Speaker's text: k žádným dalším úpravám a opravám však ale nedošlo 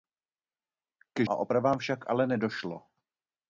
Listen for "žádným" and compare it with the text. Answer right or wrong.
wrong